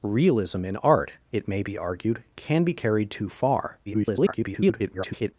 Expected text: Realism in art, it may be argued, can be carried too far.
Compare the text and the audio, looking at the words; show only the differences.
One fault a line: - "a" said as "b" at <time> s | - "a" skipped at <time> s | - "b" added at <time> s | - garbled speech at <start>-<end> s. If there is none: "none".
- garbled speech at 3.9-5.3 s